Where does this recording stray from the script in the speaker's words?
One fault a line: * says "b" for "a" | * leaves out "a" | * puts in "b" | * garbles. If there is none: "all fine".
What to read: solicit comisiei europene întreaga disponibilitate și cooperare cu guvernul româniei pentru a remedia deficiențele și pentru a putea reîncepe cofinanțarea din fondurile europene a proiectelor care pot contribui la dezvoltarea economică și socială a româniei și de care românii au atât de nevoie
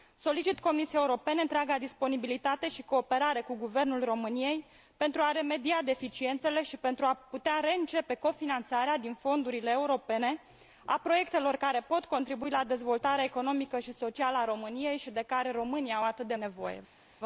all fine